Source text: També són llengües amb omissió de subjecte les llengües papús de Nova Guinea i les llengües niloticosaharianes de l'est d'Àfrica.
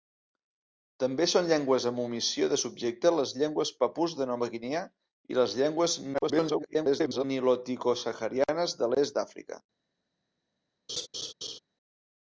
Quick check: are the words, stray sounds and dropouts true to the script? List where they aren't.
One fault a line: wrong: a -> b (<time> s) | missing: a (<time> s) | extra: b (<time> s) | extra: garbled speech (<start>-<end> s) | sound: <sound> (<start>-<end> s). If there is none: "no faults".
extra: garbled speech (6.1-7.2 s)
sound: laugh (10.9-11.6 s)